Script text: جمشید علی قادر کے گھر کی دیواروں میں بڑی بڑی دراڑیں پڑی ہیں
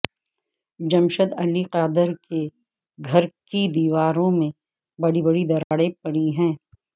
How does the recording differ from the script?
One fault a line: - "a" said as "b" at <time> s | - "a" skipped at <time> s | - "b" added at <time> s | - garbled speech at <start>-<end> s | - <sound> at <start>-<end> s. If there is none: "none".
- dropout at 5.6-5.7 s